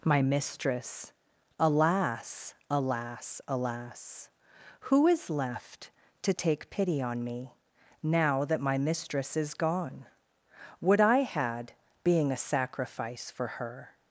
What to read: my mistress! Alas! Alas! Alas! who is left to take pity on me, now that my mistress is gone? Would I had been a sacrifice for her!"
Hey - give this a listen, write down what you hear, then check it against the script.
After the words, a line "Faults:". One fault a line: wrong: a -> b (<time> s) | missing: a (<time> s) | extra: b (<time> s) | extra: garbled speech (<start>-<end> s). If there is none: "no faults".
my mistress! Alas! Alas! Alas! who is left to take pity on me, now that my mistress is gone? Would I had being a sacrifice for her!"
Faults:
wrong: been -> being (12.0 s)